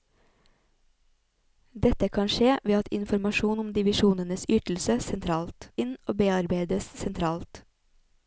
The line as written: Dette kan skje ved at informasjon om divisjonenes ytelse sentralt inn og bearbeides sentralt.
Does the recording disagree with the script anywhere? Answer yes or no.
no